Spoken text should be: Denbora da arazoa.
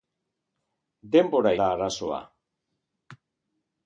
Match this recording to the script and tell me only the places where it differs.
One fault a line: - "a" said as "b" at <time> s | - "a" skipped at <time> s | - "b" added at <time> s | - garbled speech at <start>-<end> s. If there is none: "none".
none